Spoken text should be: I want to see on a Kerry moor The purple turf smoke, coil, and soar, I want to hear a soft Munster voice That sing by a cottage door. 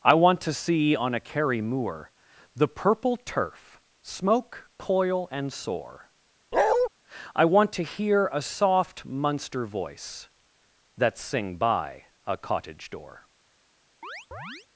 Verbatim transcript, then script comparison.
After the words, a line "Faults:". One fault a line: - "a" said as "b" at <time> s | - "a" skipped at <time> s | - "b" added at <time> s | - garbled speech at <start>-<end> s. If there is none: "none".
I want to see on a Kerry moor The purple turf smoke, coil, and soar, I want to hear a soft Munster voice That sing by a cottage door.
Faults:
none